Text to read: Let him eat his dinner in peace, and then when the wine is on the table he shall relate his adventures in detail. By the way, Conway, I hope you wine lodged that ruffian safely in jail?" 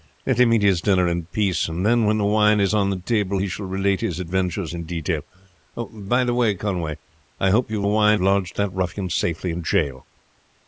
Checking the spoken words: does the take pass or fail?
pass